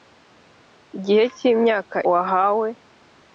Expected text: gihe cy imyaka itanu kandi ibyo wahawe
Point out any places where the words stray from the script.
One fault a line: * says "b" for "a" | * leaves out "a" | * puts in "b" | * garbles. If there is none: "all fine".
* leaves out "itanu kandi ibyo"